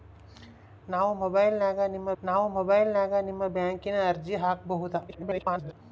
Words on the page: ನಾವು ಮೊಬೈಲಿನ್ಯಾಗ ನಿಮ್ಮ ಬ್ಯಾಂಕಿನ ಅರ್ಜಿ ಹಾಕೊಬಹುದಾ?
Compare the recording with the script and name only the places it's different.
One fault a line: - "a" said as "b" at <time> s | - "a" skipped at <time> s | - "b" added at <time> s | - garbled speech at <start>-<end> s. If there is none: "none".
- "ನಾವು ಮೊಬೈಲಿನ್ಯಾಗ ನಿಮ್ಮ" added at 2.2 s
- garbled speech at 5.1-5.7 s